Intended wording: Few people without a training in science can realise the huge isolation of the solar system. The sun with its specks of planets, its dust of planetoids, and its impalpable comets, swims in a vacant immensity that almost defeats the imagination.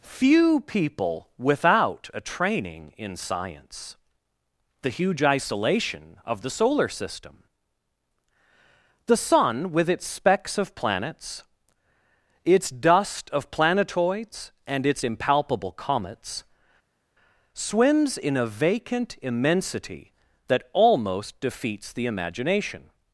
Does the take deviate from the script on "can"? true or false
true